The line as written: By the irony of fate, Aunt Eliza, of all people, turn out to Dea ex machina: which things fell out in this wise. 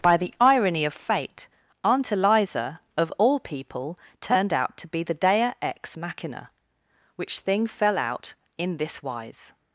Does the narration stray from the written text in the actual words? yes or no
yes